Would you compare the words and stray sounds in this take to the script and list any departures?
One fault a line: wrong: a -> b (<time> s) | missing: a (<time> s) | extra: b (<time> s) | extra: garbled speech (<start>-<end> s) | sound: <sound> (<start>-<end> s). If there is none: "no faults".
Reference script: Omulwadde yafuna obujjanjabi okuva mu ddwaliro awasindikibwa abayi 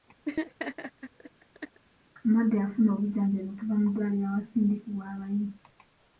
sound: laugh (0.3-1.8 s)